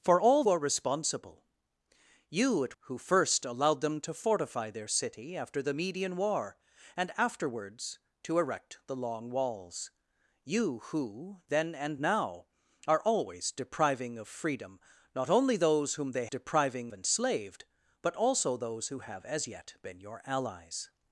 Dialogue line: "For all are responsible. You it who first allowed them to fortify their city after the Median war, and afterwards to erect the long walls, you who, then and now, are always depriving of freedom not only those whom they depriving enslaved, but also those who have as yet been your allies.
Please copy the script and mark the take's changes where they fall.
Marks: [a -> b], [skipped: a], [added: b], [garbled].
"For all are responsible. You it who first allowed them to fortify their city after the Median war, and afterwards to erect the long walls, you who, then and now, are always depriving of freedom not only those whom they depriving enslaved, but also those who have as yet been your allies.